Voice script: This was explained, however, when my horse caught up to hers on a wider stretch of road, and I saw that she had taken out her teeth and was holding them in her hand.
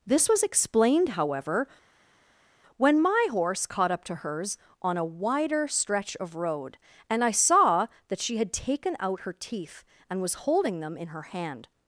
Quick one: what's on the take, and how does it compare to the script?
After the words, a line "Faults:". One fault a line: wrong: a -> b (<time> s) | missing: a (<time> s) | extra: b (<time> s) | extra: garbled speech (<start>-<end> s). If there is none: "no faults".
This was explained, however, when my horse caught up to hers on a wider stretch of road, and I saw that she had taken out her teeth and was holding them in her hand.
Faults:
no faults